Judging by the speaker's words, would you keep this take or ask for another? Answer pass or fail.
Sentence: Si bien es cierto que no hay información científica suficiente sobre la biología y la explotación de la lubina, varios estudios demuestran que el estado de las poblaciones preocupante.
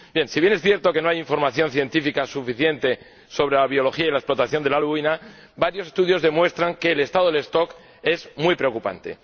fail